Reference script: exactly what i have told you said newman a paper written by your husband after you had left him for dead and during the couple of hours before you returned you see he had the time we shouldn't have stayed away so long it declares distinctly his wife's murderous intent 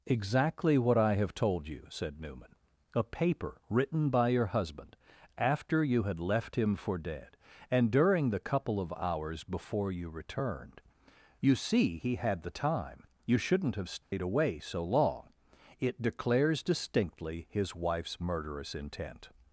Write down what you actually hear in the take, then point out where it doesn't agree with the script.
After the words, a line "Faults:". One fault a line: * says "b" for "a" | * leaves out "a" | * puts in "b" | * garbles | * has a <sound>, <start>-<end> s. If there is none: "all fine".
exactly what i have told you said newman a paper written by your husband after you had left him for dead and during the couple of hours before you returned you see he had the time you shouldn't have stayed away so long it declares distinctly his wife's murderous intent
Faults:
* says "you" for "we"
* has a dropout, 14.0-14.1 s